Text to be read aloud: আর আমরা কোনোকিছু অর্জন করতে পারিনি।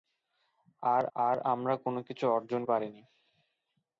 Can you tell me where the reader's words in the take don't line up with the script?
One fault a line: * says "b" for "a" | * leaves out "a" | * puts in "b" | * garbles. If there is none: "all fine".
* puts in "আর"
* leaves out "করতে"